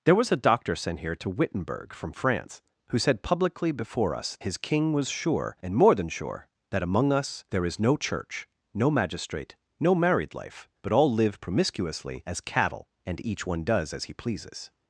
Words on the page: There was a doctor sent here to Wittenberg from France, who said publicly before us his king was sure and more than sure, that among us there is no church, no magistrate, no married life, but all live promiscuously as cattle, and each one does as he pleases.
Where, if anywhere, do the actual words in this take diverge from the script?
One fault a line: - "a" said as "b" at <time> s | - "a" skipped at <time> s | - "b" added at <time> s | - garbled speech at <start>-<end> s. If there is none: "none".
none